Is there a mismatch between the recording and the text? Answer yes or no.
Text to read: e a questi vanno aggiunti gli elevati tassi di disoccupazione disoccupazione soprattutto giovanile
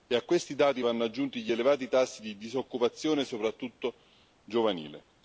yes